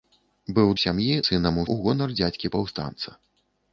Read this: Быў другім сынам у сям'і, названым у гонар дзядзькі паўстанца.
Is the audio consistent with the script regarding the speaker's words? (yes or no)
no